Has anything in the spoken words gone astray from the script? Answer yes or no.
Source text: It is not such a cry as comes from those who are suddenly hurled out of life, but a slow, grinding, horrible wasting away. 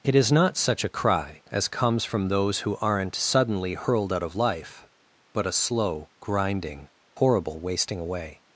yes